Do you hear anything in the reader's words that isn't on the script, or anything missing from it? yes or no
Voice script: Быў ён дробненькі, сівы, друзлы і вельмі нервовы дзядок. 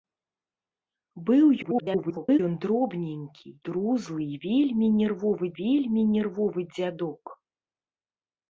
yes